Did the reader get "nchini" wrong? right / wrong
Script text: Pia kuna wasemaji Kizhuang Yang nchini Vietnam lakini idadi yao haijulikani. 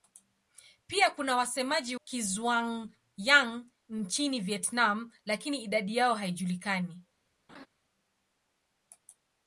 right